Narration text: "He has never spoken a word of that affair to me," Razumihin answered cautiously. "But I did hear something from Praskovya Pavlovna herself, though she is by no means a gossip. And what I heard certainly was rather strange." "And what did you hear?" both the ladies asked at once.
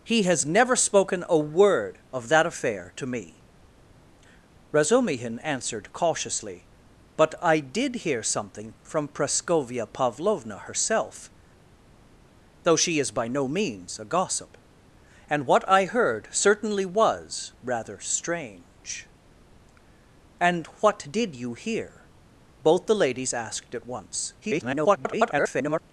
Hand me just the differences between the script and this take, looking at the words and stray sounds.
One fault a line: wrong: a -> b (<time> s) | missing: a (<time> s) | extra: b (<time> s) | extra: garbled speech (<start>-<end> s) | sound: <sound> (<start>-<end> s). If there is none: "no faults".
extra: garbled speech (24.4-25.8 s)